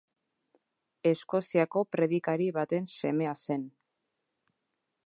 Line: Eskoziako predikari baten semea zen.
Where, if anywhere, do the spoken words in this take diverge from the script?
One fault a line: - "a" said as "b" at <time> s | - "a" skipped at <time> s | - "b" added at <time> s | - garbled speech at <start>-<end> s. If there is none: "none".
none